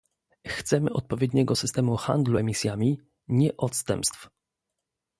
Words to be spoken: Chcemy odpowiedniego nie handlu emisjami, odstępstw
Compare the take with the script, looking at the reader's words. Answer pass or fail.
fail